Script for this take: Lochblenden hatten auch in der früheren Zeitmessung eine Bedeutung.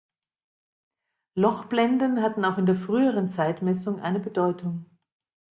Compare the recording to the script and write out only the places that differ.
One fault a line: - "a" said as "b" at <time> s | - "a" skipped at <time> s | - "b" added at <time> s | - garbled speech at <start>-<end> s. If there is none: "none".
none